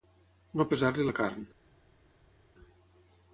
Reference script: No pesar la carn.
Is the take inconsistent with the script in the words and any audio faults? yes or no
yes